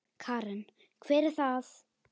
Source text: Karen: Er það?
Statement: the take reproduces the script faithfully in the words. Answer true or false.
false